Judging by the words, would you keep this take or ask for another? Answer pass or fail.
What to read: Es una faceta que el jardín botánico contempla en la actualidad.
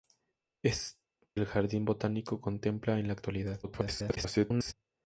fail